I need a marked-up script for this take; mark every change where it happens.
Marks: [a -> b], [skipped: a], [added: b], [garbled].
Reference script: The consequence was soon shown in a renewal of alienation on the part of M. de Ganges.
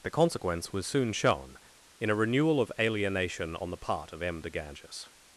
The consequence was soon shown in a renewal of alienation on the part of M. de Ganges.